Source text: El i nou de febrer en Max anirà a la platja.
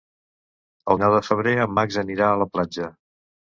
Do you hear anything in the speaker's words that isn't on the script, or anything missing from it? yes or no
no